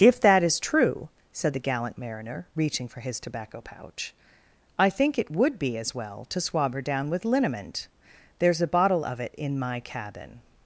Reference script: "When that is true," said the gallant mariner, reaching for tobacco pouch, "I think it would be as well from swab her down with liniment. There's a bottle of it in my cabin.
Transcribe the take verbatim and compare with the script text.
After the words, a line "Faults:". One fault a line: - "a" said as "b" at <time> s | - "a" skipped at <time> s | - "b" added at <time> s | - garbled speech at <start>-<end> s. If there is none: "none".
"If that is true," said the gallant mariner, reaching for his tobacco pouch, "I think it would be as well to swab her down with liniment. There's a bottle of it in my cabin.
Faults:
- "When" said as "If" at 0.0 s
- "his" added at 3.0 s
- "from" said as "to" at 6.3 s